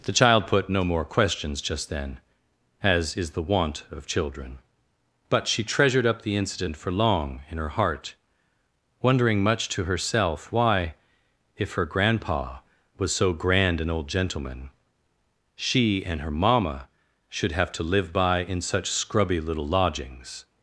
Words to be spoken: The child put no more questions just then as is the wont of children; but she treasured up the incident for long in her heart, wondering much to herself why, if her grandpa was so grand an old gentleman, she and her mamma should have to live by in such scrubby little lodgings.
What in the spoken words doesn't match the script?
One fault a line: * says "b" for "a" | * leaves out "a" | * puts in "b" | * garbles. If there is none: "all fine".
all fine